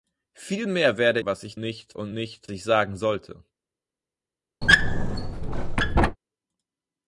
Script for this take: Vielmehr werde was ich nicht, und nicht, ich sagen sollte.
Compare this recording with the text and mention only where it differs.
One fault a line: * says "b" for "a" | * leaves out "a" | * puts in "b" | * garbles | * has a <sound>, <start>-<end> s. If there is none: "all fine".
* has a squeak, 4.6-6.2 s